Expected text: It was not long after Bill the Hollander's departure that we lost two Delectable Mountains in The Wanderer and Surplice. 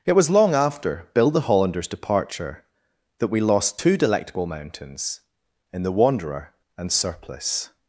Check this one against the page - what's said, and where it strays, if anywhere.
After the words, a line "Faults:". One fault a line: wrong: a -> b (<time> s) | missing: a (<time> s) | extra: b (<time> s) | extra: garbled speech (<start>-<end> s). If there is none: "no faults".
It was long after Bill the Hollander's departure that we lost two Delectable Mountains in The Wanderer and Surplice.
Faults:
missing: not (0.3 s)